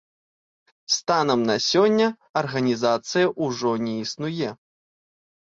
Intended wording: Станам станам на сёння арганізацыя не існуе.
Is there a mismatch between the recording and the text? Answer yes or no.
yes